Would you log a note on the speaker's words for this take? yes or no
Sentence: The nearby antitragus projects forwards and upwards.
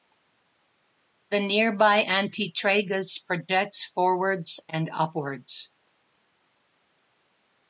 no